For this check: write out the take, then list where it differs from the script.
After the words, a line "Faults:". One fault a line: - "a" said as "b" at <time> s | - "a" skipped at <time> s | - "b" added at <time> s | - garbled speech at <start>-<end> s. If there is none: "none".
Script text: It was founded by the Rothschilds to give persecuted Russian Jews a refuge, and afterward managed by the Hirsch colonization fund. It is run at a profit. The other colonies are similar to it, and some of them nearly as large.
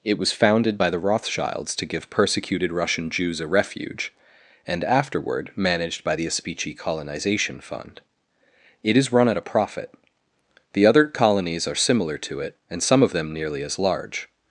It was founded by the Rothschilds to give persecuted Russian Jews a refuge, and afterward managed by the Aspici colonization fund. It is run at a profit. The other colonies are similar to it, and some of them nearly as large.
Faults:
- "Hirsch" said as "Aspici" at 6.3 s